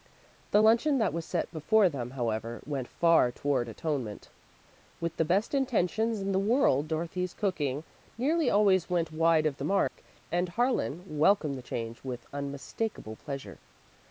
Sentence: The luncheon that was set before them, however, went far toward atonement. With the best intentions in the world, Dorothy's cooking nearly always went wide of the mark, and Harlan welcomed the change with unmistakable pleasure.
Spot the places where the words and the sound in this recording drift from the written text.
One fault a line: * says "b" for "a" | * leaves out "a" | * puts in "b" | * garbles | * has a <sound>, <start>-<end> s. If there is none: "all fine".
* has a dropout, 9.9-10.0 s